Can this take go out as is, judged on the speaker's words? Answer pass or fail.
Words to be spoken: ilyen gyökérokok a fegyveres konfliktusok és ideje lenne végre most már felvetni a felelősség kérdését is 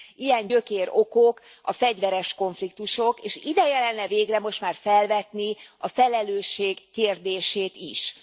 pass